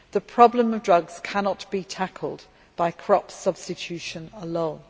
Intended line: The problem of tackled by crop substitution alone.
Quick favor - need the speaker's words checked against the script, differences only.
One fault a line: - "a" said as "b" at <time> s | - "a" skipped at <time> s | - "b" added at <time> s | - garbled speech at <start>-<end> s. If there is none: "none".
- "drugs cannot be" added at 0.8 s